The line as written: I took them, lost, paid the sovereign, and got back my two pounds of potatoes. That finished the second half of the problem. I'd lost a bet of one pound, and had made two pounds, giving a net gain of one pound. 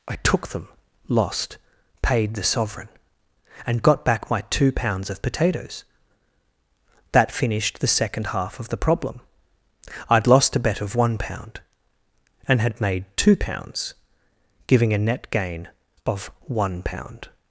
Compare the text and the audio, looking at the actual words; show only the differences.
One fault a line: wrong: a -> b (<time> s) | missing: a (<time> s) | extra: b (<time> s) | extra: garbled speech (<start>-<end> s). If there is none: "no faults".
no faults